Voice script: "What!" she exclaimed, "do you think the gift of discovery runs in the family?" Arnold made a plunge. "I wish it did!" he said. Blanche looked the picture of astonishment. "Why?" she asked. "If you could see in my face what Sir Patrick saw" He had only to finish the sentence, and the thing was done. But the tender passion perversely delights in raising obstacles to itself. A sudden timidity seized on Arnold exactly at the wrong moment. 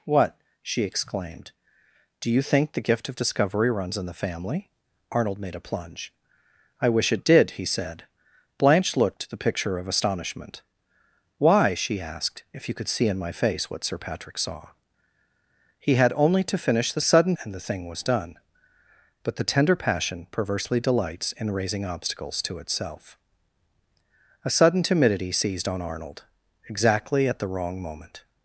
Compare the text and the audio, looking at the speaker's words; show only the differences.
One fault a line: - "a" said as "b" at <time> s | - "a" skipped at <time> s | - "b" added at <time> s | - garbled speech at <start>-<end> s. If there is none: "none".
- "sentence" said as "sudden" at 17.0 s